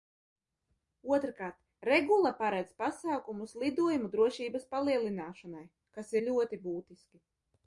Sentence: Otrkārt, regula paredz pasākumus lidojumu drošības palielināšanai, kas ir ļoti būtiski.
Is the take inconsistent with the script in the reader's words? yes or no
no